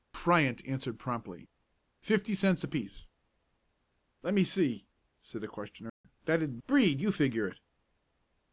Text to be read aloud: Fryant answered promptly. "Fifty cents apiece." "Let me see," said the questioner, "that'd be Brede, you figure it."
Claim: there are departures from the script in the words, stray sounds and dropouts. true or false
true